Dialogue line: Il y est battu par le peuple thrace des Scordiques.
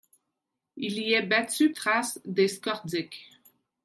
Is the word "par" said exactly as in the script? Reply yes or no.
no